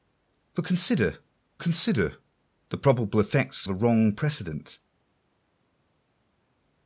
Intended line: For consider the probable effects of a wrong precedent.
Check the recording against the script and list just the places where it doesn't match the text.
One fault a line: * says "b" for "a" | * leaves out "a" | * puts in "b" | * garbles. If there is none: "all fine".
* puts in "consider"
* leaves out "of"